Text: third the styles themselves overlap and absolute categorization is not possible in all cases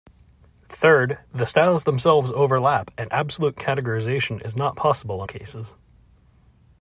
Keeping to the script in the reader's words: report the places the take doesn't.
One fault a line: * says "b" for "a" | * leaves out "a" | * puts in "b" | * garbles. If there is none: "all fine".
* leaves out "all"